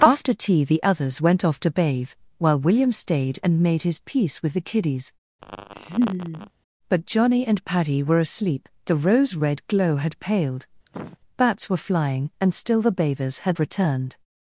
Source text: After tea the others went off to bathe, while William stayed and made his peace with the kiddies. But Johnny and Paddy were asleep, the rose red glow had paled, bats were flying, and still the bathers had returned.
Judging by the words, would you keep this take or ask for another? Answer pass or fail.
pass